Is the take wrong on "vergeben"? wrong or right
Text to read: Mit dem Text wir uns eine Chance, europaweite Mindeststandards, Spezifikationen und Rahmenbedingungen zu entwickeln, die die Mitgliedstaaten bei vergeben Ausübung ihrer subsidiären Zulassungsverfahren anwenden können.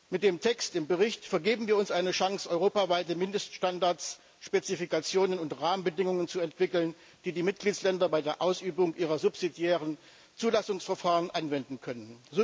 wrong